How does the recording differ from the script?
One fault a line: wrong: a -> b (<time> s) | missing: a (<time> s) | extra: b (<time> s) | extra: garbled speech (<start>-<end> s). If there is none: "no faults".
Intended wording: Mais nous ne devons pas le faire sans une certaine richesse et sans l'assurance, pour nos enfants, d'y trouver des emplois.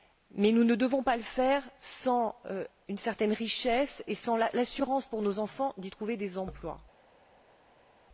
no faults